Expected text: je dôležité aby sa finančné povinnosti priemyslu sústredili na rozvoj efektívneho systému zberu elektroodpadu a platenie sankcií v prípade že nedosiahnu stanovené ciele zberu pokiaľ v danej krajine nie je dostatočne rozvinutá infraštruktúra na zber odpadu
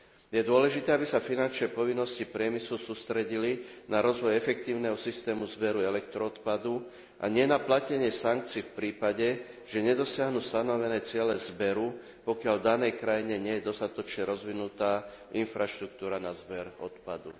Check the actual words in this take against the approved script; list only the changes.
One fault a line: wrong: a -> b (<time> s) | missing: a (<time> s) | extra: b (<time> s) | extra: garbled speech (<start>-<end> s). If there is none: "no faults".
extra: nie na (7.3 s)